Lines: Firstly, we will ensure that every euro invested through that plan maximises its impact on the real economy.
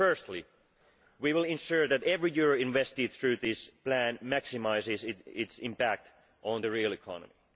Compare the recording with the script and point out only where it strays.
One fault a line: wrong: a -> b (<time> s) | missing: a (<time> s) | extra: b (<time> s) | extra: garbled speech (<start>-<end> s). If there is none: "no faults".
wrong: that -> this (3.3 s)